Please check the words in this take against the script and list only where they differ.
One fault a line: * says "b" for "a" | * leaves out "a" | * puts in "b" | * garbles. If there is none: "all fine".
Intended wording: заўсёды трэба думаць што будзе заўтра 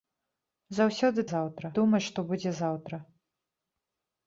* says "заўтра" for "трэба"